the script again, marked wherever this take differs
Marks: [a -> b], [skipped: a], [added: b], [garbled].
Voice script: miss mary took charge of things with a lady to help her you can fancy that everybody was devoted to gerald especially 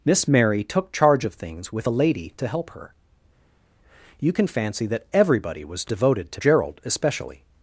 miss mary took charge of things with a lady to help her you can fancy that everybody was devoted to gerald especially